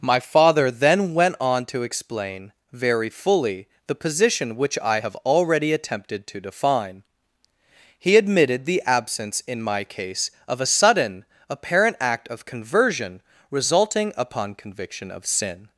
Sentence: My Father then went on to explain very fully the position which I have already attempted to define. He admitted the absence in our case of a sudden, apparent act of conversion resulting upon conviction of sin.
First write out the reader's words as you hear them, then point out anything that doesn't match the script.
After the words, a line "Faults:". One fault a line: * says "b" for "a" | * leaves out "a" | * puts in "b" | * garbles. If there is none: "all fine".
My Father then went on to explain very fully the position which I have already attempted to define. He admitted the absence in my case of a sudden, apparent act of conversion resulting upon conviction of sin.
Faults:
* says "my" for "our"